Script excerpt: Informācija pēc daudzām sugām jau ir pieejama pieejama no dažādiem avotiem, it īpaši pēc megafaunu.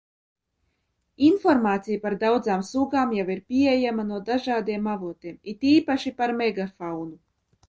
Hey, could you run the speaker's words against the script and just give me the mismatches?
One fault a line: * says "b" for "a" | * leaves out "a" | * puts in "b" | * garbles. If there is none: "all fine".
* says "par" for "pēc"
* leaves out "pieejama"
* says "par" for "pēc"